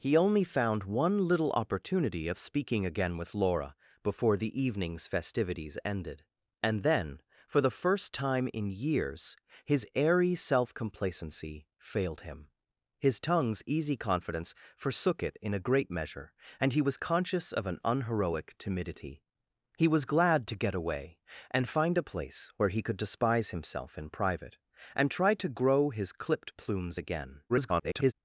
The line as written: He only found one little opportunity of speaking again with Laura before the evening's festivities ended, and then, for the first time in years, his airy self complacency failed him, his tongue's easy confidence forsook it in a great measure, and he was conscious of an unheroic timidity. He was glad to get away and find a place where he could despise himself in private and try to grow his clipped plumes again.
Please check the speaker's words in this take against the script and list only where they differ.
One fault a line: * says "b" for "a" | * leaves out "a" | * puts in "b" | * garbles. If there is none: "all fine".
* garbles